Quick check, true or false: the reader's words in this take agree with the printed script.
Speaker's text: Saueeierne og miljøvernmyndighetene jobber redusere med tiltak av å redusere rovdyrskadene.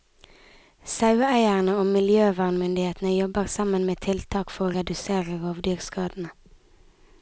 false